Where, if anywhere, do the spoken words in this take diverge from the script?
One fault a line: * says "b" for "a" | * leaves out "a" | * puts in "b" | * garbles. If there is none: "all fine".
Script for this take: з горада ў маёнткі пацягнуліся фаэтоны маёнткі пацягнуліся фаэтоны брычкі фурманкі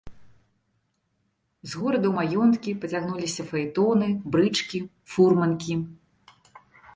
* leaves out "маёнткі пацягнуліся фаэтоны"